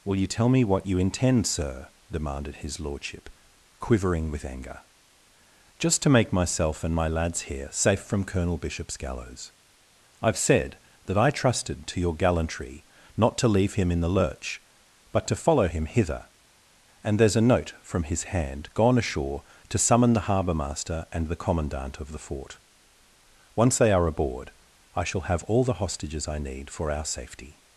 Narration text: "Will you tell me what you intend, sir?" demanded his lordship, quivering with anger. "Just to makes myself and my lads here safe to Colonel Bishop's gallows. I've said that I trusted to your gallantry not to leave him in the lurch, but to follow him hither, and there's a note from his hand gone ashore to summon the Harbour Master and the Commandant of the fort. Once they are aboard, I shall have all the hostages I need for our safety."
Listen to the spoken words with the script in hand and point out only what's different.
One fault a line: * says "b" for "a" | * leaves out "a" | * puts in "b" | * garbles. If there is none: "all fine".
* says "make" for "makes"
* says "from" for "to"